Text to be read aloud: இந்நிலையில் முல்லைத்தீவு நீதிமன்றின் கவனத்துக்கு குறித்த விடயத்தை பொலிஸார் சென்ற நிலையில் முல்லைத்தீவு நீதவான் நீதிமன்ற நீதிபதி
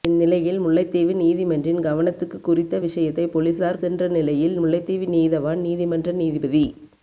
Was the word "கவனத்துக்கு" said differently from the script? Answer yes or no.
no